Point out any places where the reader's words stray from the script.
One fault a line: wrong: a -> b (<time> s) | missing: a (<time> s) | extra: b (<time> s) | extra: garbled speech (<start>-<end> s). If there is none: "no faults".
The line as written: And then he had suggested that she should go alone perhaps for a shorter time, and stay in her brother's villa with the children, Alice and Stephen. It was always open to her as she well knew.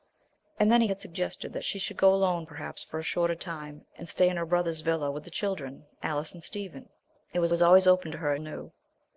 extra: was (7.5 s)
missing: she well (8.4 s)